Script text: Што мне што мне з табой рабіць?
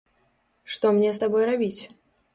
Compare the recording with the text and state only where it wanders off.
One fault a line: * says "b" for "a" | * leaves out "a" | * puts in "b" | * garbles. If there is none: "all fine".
* leaves out "што мне"